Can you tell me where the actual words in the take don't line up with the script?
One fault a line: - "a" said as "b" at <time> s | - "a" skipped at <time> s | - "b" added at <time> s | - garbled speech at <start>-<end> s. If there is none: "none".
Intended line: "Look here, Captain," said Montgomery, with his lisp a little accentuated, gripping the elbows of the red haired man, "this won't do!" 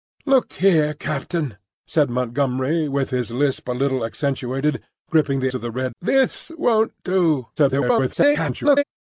- "elbows" skipped at 5.5 s
- "haired man" skipped at 5.9 s
- garbled speech at 7.6-8.8 s